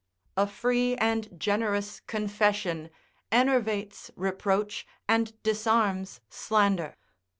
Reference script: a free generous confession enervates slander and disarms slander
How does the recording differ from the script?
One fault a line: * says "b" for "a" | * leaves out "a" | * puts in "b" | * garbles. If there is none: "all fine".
* puts in "and"
* says "reproach" for "slander"